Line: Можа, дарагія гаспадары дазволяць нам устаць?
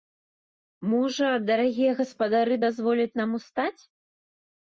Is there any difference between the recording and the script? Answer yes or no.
no